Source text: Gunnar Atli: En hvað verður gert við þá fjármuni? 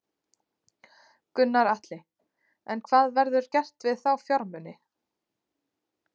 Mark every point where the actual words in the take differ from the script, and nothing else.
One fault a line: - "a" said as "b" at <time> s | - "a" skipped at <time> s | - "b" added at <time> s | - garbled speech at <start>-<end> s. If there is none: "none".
none